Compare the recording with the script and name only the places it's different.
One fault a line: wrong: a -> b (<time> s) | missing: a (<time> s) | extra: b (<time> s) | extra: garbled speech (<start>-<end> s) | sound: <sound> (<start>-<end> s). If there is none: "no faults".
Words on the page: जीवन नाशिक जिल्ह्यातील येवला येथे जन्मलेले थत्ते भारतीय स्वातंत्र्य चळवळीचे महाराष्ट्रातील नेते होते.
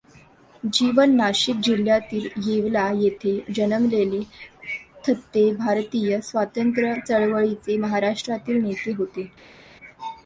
no faults